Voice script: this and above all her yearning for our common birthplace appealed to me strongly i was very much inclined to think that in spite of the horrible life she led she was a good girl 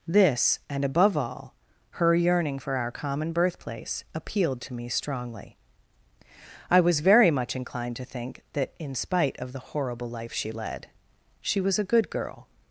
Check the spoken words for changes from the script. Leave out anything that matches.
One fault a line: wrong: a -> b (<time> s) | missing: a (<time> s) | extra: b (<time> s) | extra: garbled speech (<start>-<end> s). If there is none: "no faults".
no faults